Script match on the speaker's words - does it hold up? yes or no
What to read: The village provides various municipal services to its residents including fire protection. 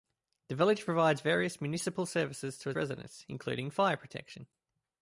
no